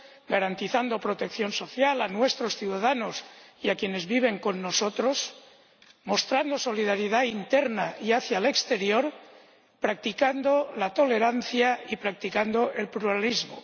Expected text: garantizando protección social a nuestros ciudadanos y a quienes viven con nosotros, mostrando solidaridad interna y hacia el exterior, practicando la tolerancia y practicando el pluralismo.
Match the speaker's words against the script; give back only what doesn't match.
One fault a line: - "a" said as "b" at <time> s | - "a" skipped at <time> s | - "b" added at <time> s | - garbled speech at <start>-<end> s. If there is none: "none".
none